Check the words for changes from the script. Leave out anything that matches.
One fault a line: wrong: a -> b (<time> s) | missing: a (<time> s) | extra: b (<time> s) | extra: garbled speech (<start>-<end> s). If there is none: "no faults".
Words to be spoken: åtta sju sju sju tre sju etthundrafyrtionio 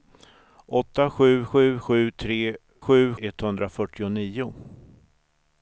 no faults